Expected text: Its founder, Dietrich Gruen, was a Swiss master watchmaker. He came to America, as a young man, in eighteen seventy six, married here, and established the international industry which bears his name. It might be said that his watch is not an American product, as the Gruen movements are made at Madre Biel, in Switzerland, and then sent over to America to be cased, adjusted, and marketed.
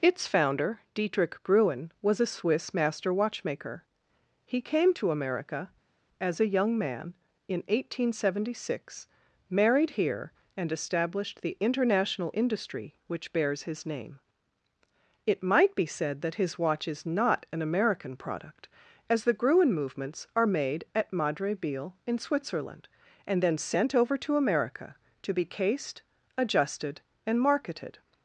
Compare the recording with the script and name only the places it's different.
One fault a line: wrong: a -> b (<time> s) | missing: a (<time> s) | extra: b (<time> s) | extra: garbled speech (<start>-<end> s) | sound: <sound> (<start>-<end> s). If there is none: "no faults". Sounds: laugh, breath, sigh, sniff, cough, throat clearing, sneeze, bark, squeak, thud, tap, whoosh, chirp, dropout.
no faults